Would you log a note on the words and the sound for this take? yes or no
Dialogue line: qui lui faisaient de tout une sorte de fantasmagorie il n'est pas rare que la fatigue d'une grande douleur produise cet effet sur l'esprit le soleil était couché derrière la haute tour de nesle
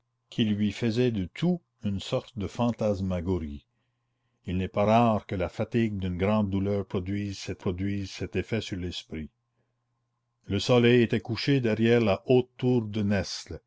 yes